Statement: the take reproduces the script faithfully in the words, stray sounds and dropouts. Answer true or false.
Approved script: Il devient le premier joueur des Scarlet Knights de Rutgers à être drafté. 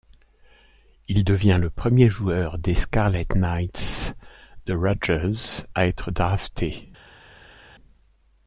true